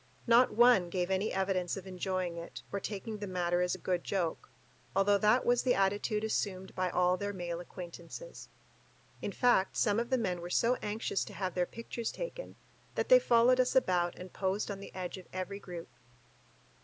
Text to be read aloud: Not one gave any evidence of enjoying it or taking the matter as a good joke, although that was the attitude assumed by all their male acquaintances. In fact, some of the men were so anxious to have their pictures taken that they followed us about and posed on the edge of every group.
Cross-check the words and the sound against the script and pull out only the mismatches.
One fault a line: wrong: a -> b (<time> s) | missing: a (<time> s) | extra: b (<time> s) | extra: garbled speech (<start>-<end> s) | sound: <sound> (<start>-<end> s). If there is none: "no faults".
no faults